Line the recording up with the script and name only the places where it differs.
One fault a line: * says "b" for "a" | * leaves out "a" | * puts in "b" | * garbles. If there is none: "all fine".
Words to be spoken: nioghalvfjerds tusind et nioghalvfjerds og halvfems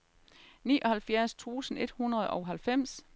* says "hundrede" for "nioghalvfjerds"